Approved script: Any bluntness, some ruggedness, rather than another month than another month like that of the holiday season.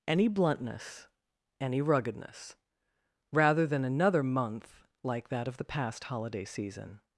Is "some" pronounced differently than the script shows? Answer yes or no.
yes